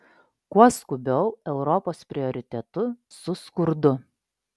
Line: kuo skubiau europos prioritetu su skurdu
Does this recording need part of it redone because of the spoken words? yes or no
no